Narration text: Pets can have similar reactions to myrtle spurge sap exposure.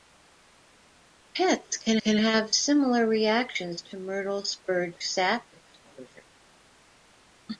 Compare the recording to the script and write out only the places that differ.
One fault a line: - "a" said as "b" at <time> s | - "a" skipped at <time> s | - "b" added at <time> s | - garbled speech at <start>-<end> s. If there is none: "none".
- "can" added at 2.0 s